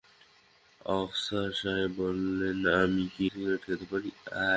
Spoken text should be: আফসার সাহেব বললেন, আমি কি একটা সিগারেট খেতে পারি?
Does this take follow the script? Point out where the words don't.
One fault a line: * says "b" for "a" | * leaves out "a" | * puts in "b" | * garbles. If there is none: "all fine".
* leaves out "একটা"